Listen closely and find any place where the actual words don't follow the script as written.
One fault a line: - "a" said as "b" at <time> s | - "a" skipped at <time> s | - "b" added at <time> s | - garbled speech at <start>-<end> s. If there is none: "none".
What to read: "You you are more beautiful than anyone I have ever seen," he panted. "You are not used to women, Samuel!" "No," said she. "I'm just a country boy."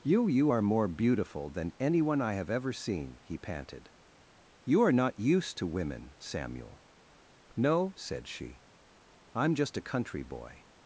none